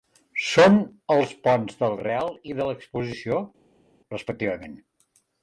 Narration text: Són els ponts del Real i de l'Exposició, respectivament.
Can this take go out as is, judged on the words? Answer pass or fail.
pass